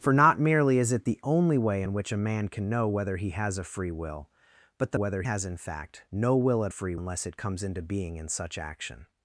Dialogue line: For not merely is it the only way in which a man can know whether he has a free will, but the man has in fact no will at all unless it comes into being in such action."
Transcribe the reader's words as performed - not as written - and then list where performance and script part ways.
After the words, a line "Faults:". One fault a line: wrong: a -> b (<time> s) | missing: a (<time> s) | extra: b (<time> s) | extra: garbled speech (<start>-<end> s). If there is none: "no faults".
For not merely is it the only way in which a man can know whether he has a free will, but the whether has in fact no will at free unless it comes into being in such action."
Faults:
wrong: man -> whether (4.9 s)
wrong: all -> free (6.7 s)